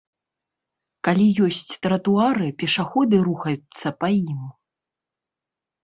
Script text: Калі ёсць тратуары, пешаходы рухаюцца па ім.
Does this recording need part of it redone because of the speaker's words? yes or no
no